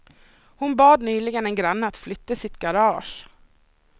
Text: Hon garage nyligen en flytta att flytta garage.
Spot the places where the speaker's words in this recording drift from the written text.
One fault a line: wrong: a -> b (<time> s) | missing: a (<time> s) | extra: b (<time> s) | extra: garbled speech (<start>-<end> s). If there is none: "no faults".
wrong: garage -> bad (0.8 s)
wrong: flytta -> granne (1.6 s)
extra: sitt (2.4 s)